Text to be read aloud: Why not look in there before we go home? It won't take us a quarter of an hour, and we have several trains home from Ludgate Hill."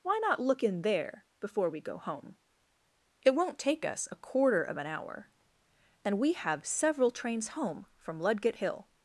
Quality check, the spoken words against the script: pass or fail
pass